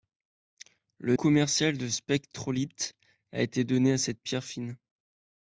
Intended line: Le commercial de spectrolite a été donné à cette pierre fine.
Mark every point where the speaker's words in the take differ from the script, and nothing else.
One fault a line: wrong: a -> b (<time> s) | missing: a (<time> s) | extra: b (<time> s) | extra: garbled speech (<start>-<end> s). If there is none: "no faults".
no faults